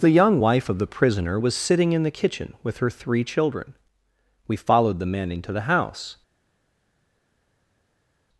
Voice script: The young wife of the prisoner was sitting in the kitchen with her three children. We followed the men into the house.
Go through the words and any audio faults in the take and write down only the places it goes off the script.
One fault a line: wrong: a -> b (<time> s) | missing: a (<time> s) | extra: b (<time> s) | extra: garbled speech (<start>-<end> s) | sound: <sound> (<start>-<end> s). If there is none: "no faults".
no faults